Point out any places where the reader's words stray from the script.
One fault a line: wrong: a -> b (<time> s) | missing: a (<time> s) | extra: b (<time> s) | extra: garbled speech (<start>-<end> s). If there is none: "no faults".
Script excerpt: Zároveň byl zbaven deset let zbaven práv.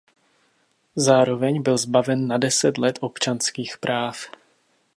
extra: na (2.3 s)
wrong: zbaven -> občanských (3.0 s)